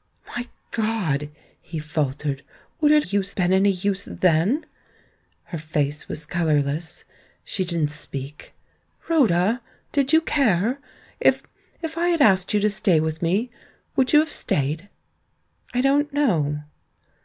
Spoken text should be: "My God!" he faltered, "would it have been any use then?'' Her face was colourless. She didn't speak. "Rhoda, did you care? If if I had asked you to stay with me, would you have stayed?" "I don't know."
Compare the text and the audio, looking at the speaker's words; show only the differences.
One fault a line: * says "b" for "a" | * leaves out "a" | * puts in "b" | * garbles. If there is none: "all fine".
* says "use" for "have"